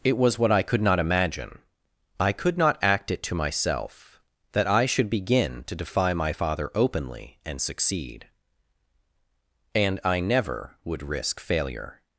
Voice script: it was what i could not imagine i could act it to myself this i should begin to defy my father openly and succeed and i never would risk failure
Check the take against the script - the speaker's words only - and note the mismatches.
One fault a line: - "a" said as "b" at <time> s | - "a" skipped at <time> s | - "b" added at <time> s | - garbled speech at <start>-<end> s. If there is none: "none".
- "not" added at 2.6 s
- "this" said as "that" at 4.5 s